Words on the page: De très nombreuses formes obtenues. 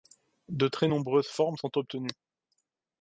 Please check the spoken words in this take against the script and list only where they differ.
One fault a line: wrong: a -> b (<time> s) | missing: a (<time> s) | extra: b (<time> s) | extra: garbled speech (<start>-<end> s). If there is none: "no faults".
extra: sont (1.6 s)